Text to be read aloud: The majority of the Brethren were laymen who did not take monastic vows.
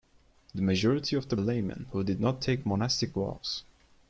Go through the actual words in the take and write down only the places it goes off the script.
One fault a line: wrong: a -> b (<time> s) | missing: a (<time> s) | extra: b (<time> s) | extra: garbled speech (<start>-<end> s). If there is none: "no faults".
missing: Brethren were (1.4 s)